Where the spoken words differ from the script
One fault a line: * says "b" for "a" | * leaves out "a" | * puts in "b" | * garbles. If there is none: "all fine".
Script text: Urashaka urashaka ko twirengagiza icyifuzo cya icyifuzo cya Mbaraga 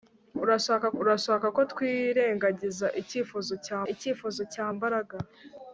all fine